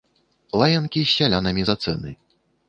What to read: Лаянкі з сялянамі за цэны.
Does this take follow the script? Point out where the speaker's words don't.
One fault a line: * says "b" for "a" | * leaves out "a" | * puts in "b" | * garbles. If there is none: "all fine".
all fine